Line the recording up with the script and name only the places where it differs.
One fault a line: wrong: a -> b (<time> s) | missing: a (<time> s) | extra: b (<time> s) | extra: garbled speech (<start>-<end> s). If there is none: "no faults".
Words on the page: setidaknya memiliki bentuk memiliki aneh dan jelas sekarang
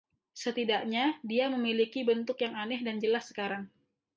extra: dia (1.2 s)
wrong: memiliki -> yang (2.4 s)